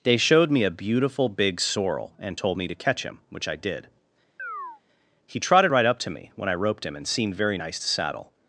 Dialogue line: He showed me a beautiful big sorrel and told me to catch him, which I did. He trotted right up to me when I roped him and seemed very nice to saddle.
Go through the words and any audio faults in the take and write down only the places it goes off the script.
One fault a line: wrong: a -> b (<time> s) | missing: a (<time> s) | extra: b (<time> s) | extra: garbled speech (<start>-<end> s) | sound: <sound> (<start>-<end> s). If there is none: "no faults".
wrong: He -> They (0.0 s)
sound: chirp (4.4-4.8 s)